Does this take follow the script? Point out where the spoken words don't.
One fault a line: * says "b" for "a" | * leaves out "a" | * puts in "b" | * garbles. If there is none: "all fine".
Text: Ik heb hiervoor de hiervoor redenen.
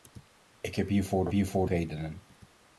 all fine